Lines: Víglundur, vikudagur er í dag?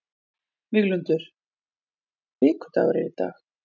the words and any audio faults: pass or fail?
pass